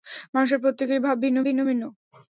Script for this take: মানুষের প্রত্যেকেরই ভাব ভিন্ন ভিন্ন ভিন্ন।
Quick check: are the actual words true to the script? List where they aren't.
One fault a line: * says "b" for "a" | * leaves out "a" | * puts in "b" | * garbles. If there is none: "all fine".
all fine